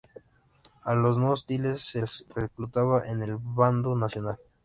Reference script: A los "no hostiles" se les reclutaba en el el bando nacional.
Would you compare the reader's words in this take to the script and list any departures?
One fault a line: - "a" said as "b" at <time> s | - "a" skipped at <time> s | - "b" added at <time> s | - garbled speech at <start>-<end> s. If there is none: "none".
- "el" skipped at 3.4 s